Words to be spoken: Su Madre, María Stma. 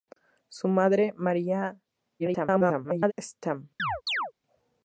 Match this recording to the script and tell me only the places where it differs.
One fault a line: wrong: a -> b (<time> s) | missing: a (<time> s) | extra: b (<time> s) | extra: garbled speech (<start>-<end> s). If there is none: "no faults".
extra: garbled speech (2.2-3.1 s)